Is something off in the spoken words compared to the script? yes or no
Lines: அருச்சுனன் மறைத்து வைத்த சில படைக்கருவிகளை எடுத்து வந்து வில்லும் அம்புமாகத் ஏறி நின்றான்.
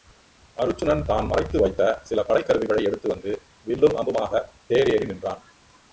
yes